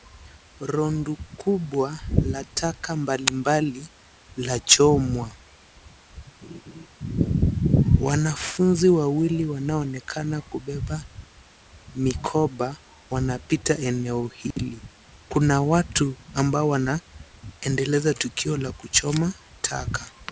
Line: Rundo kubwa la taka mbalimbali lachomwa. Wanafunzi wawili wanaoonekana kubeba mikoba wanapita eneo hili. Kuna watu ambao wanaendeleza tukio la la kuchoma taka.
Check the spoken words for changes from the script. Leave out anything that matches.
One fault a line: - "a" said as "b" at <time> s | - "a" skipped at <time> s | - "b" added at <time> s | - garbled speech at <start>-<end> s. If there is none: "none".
- "la" skipped at 18.7 s